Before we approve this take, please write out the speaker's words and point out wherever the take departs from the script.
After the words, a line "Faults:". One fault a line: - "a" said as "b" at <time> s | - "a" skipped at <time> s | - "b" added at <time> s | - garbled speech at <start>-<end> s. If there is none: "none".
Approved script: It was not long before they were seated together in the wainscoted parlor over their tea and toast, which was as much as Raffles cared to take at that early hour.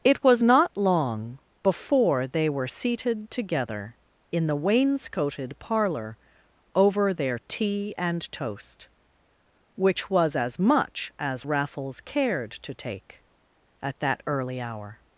It was not long before they were seated together in the wainscoted parlor over their tea and toast, which was as much as Raffles cared to take at that early hour.
Faults:
none